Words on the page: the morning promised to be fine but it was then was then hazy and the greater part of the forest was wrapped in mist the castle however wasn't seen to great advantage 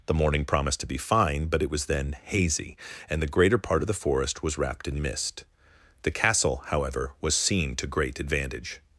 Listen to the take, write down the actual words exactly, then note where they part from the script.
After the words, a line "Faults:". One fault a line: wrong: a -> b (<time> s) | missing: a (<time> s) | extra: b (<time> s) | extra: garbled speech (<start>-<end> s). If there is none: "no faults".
the morning promised to be fine but it was then hazy and the greater part of the forest was wrapped in mist the castle however was seen to great advantage
Faults:
missing: was then (2.2 s)
wrong: wasn't -> was (7.2 s)